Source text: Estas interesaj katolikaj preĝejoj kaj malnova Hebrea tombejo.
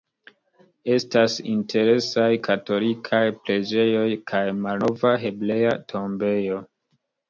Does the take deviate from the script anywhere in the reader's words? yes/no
no